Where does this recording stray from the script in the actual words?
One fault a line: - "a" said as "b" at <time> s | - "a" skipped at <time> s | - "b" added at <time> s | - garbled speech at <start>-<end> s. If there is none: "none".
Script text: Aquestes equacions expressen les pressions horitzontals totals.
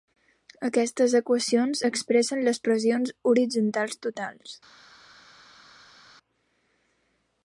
none